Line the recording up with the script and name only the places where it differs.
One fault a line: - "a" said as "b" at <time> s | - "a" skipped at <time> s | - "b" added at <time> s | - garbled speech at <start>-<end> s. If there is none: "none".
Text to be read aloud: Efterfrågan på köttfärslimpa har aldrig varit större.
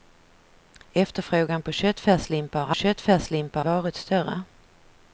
- "aldrig" said as "köttfärslimpa" at 2.7 s